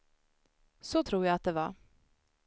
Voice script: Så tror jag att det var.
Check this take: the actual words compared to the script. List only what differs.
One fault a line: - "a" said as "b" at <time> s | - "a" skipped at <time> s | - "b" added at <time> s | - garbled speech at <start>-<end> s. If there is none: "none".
none